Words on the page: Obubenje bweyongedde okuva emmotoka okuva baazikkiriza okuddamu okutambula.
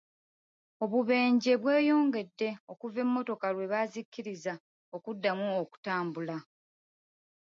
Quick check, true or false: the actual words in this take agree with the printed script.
false